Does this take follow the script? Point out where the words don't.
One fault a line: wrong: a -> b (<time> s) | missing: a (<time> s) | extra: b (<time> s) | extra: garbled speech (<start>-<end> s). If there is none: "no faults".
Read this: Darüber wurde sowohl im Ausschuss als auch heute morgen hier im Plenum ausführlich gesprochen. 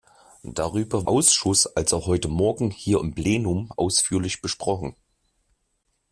missing: wurde sowohl im (1.1 s)